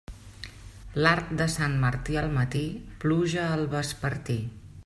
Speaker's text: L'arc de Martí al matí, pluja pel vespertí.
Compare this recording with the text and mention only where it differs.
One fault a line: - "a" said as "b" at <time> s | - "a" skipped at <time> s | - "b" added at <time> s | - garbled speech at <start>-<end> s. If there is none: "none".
- "Sant" added at 1.6 s
- "pel" said as "al" at 3.6 s